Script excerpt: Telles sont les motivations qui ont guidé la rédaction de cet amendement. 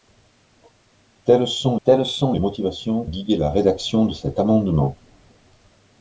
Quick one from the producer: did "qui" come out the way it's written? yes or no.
no